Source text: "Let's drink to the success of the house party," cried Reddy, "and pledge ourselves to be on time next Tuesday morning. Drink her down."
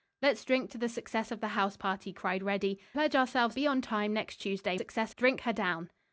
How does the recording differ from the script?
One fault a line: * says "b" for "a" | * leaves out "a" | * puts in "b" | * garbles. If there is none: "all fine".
* leaves out "and"
* leaves out "to"
* says "success" for "morning"